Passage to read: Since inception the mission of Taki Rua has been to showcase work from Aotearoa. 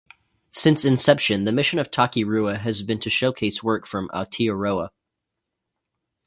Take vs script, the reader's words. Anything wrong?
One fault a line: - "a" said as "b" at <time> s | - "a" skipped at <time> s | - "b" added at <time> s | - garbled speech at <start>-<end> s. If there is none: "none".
none